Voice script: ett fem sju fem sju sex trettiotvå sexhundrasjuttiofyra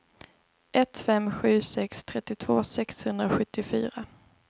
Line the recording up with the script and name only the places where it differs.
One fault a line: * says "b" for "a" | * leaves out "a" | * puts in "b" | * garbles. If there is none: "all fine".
* leaves out "fem sju"